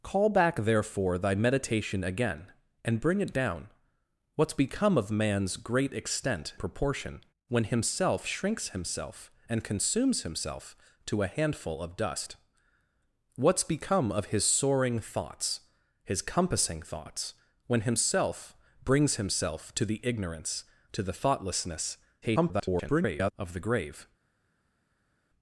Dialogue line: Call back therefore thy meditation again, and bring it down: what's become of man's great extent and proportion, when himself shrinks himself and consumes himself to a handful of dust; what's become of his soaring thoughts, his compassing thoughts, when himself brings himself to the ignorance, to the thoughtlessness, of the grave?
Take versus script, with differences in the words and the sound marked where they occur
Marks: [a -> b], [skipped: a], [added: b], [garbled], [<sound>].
Call back therefore thy meditation again, and bring it down: what's become of man's great extent [skipped: and] proportion, when himself shrinks himself and consumes himself to a handful of dust; what's become of his soaring thoughts, his compassing thoughts, when himself brings himself to the ignorance, to the thoughtlessness, [garbled] of the grave?